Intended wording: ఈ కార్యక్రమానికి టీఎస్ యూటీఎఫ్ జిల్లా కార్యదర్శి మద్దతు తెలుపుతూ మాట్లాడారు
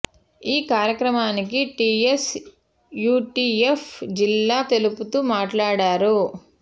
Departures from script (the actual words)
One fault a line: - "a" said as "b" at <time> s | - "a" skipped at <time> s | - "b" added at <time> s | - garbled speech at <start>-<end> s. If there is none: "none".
- "కార్యదర్శి మద్దతు" skipped at 4.6 s